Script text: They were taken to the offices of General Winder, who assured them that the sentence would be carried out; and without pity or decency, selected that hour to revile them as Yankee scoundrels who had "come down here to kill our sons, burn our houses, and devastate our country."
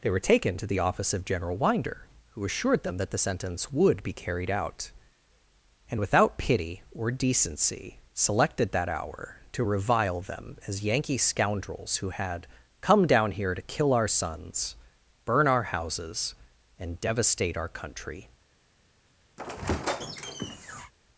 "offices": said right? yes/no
no